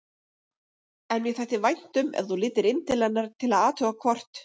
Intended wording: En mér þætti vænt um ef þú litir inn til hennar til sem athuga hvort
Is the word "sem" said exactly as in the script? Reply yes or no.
no